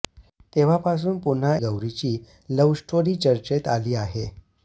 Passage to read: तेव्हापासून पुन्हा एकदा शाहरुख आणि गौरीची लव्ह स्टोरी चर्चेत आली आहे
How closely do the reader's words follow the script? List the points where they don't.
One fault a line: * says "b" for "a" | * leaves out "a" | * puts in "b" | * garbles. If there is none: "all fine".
* leaves out "एकदा शाहरुख आणि"